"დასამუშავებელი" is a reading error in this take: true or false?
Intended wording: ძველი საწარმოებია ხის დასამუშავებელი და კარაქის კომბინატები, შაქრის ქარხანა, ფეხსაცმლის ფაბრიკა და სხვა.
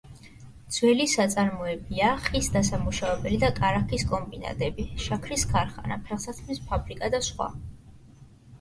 false